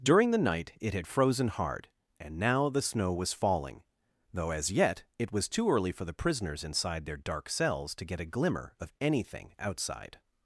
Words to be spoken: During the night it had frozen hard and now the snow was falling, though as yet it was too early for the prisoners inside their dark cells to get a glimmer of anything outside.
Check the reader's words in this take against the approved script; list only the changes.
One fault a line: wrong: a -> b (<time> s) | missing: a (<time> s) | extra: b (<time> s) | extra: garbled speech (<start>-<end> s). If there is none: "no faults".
no faults